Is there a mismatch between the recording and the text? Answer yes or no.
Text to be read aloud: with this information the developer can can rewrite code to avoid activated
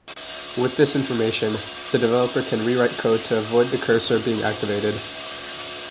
yes